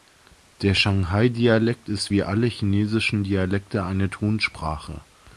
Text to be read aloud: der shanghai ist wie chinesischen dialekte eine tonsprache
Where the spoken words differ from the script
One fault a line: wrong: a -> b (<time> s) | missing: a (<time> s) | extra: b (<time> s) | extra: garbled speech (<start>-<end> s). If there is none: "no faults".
extra: dialekt (1.3 s)
extra: alle (2.2 s)